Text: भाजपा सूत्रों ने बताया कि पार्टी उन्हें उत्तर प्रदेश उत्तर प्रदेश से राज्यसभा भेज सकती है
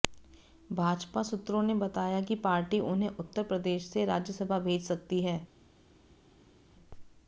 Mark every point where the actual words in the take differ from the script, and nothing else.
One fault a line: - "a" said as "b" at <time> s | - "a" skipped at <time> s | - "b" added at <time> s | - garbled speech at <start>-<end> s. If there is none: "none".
- "उत्तर प्रदेश" skipped at 3.9 s